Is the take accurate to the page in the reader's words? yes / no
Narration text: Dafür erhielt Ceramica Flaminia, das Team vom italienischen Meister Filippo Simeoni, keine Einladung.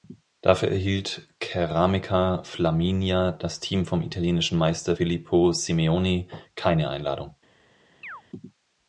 yes